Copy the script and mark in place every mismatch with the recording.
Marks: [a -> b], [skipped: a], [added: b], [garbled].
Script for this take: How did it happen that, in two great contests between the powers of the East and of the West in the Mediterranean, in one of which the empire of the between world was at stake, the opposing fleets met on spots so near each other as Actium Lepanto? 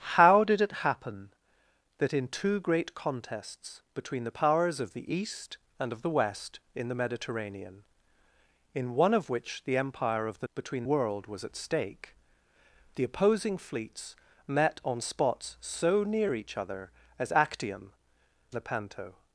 How did it happen that, in two great contests between the powers of the East and of the West in the Mediterranean, in one of which the empire of the between world was at stake, the opposing fleets met on spots so near each other as Actium Lepanto?